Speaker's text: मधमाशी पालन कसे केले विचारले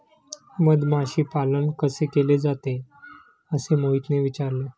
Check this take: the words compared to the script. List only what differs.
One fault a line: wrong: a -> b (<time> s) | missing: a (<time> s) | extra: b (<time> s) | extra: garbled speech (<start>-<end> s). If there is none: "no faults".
extra: जाते असे मोहितने (2.4 s)